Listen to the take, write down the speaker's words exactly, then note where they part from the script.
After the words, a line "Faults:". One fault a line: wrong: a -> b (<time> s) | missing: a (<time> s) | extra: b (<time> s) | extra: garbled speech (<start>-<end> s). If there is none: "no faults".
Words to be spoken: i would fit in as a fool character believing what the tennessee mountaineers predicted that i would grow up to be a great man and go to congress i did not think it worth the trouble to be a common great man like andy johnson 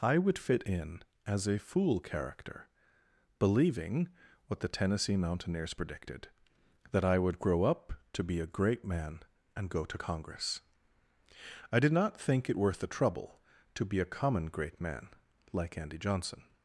i would fit in as a fool character believing what the tennessee mountaineers predicted that i would grow up to be a great man and go to congress i did not think it worth the trouble to be a common great man like andy johnson
Faults:
no faults